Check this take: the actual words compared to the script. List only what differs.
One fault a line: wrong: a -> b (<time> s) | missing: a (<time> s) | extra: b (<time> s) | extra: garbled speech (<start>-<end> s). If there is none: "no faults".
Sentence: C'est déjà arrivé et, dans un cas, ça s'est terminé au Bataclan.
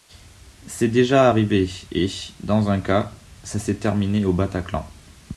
no faults